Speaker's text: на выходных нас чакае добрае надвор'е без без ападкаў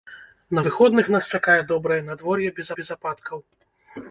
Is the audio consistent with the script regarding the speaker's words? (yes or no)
yes